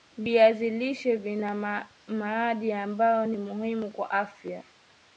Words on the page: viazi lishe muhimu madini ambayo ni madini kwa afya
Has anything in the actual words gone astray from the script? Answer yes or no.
yes